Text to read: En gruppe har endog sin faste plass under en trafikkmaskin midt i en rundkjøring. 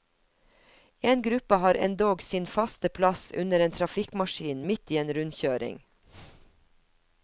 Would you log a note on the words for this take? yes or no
no